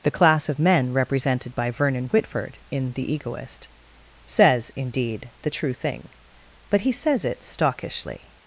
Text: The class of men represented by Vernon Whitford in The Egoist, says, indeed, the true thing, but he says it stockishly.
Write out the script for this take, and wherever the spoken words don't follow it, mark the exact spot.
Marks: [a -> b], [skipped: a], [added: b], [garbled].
The class of men represented by Vernon Whitford in The Egoist, says, indeed, the true thing, but he says it stockishly.